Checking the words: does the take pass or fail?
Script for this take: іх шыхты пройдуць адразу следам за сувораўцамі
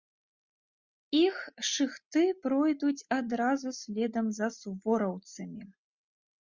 pass